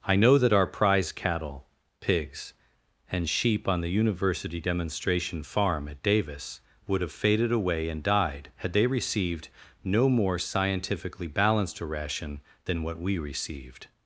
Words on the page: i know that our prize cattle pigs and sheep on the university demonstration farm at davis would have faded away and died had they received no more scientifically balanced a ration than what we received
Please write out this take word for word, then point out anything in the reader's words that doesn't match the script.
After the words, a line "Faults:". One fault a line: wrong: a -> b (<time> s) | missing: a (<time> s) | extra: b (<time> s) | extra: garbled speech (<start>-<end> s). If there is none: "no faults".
i know that our prize cattle pigs and sheep on the university demonstration farm at davis would have faded away and died had they received no more scientifically balanced a ration than what we received
Faults:
no faults